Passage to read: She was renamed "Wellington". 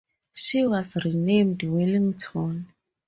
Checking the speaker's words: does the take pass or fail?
pass